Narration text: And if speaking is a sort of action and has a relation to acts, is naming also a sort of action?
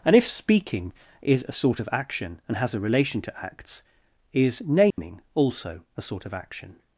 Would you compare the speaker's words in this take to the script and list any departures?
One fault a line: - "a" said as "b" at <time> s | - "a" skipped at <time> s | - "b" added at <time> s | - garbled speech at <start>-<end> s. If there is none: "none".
none